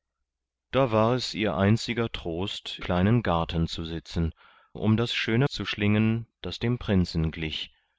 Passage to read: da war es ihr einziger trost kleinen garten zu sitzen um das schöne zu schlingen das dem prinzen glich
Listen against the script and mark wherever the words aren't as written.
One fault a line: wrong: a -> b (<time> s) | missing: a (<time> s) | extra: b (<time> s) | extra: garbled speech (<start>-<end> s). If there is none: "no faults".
no faults